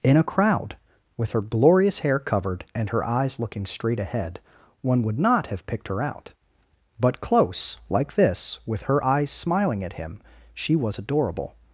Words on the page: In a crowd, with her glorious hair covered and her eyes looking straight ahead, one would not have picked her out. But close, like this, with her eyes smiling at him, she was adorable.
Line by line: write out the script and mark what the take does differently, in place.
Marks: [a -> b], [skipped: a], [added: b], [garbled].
In a crowd, with her glorious hair covered and her eyes looking straight ahead, one would not have picked her out. But close, like this, with her eyes smiling at him, she was adorable.